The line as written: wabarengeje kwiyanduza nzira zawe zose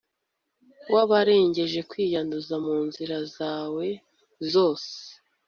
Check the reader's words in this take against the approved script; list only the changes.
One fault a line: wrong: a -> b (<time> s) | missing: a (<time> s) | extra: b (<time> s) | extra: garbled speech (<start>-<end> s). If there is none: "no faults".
extra: mu (2.6 s)